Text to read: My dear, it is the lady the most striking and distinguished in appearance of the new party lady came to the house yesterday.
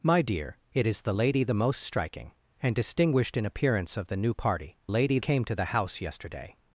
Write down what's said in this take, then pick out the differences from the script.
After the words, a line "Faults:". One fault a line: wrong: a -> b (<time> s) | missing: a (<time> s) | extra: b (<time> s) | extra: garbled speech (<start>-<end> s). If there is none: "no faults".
My dear, it is the lady the most striking and distinguished in appearance of the new party lady came to the house yesterday.
Faults:
no faults